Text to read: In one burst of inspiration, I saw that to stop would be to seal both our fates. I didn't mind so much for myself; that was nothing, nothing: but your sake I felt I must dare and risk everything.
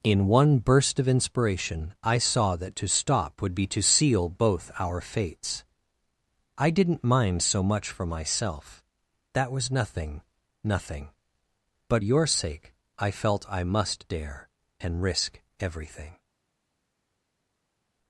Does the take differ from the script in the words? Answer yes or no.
no